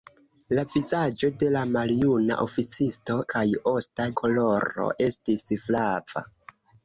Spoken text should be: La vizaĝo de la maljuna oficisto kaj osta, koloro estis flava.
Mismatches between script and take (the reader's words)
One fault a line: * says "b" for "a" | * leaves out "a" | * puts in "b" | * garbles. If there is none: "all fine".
all fine